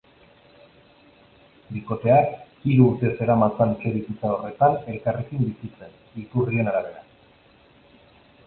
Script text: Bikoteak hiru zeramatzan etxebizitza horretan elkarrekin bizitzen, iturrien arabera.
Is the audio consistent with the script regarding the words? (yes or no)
no